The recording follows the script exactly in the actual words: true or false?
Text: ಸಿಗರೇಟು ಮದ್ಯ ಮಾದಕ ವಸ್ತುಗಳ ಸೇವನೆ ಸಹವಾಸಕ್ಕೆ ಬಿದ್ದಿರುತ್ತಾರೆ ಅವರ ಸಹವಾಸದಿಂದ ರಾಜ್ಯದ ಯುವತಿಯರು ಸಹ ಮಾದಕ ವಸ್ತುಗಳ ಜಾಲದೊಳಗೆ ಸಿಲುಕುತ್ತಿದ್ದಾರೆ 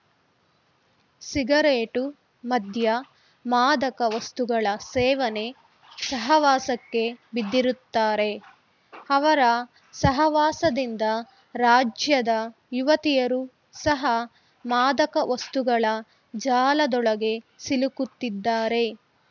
true